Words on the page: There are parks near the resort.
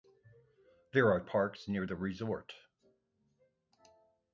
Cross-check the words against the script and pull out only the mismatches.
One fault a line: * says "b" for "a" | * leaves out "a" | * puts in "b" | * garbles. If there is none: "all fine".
all fine